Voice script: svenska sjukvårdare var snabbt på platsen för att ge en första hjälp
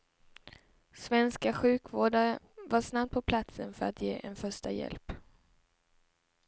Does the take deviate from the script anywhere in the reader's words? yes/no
no